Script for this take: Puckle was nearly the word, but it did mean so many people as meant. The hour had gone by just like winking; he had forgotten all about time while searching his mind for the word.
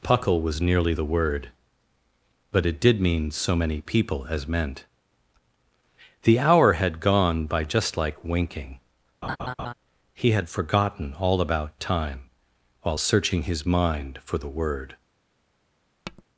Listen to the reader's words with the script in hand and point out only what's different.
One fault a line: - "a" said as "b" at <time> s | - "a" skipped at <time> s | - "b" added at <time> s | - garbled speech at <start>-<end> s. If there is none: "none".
none